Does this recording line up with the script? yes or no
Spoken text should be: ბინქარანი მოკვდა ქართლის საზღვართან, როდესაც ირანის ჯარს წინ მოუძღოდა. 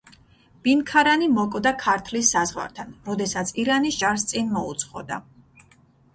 yes